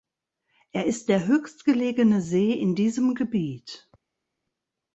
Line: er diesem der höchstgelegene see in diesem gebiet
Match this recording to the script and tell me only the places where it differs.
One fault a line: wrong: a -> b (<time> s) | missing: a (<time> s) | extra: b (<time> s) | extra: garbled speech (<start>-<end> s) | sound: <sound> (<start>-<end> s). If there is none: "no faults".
wrong: diesem -> ist (0.9 s)